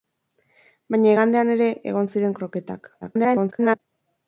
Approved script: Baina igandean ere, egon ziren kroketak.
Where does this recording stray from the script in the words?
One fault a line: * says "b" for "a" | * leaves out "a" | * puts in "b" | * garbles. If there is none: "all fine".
* garbles